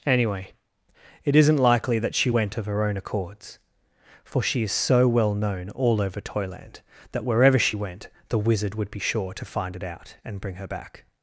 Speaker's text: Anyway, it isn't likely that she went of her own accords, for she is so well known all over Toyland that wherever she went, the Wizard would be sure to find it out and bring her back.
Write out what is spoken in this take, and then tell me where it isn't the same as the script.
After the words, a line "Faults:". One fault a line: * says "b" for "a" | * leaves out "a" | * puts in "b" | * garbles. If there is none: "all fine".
Anyway, it isn't likely that she went of her own accords, for she is so well known all over Toyland that wherever she went, the Wizard would be sure to find it out and bring her back.
Faults:
all fine